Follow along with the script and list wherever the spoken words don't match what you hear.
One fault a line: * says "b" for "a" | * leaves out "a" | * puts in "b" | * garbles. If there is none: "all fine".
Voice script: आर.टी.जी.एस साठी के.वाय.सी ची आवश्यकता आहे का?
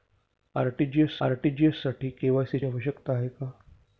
* puts in "आर.टी.जी.एस"
* leaves out "ची"